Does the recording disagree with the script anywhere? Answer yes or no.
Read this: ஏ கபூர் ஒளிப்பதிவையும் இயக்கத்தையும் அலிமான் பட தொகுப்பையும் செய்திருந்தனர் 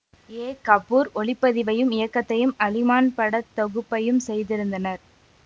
no